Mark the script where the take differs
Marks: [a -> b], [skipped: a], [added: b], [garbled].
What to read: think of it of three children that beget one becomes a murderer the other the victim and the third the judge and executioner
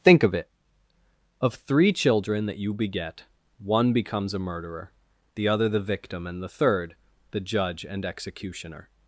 think of it of three children that [added: you] beget one becomes a murderer the other the victim and the third the judge and executioner